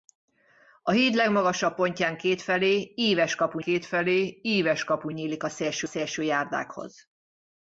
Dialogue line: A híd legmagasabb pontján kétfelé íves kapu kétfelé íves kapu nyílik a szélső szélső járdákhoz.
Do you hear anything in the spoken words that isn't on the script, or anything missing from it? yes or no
no